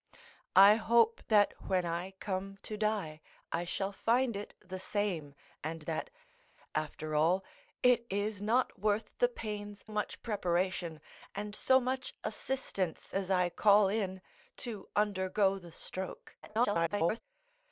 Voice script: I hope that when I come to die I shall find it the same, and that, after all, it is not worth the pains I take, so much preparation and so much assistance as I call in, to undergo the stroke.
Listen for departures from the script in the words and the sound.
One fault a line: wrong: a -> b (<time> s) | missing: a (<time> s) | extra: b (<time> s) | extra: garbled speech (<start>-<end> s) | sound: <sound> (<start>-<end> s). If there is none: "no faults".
missing: I take so (9.8 s)
extra: garbled speech (16.4-17.2 s)